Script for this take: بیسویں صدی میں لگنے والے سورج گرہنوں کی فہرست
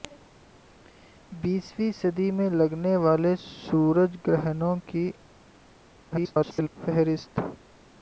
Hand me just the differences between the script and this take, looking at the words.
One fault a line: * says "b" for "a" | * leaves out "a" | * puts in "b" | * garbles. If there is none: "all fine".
* garbles